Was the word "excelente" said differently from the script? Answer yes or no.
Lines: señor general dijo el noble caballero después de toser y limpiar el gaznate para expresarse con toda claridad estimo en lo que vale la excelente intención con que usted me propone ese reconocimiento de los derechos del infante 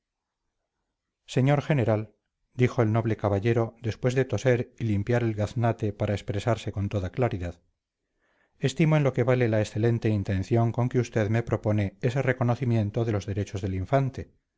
no